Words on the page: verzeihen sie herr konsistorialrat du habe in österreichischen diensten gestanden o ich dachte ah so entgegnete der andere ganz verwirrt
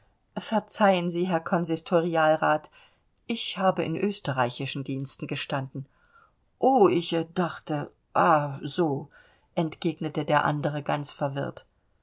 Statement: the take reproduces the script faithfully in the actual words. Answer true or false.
false